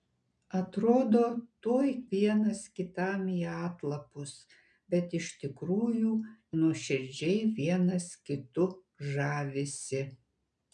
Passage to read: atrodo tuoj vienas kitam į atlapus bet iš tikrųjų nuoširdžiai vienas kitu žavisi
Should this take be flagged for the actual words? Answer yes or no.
no